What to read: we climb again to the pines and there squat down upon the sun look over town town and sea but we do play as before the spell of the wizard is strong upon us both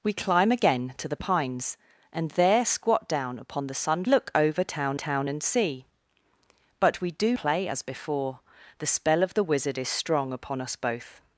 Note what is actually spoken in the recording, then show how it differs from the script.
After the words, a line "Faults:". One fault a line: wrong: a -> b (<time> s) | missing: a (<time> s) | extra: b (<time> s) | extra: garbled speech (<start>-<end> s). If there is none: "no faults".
we climb again to the pines and there squat down upon the sun look over town town and sea but we do play as before the spell of the wizard is strong upon us both
Faults:
no faults